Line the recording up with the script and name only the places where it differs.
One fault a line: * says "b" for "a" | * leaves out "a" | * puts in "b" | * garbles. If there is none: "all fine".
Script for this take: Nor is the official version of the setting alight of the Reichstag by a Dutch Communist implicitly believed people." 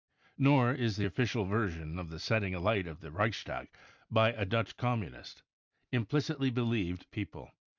all fine